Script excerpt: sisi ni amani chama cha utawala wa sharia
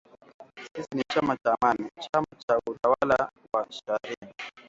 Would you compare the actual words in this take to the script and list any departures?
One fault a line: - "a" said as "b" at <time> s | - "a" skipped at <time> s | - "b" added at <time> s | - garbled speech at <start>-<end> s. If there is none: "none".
- "chama cha" added at 1.1 s